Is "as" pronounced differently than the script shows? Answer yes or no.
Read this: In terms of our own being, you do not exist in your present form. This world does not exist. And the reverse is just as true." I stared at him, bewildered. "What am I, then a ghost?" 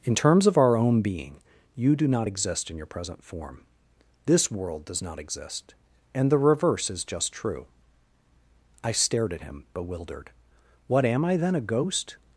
yes